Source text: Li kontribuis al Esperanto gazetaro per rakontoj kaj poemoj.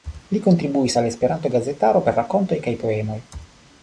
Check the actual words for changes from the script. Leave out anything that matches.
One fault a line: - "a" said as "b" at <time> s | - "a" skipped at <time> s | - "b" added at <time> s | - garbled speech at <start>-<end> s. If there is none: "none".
none